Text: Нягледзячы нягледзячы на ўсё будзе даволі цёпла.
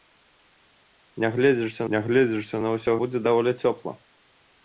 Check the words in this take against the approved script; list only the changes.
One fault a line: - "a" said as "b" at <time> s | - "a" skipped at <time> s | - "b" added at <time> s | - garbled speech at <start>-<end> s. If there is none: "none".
none